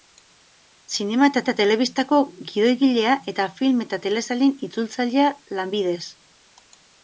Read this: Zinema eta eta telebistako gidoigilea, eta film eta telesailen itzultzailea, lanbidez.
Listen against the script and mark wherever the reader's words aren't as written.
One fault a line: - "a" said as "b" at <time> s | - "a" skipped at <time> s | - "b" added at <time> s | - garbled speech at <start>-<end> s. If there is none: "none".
none